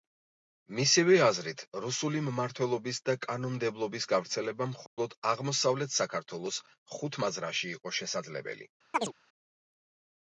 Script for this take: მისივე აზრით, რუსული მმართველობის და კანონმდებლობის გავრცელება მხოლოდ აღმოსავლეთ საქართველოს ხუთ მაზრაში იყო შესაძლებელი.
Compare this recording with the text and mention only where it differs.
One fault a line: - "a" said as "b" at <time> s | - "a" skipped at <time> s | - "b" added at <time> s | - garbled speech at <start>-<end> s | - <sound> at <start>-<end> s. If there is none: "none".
- dropout at 4.9-5.0 s
- chirp at 8.9-9.1 s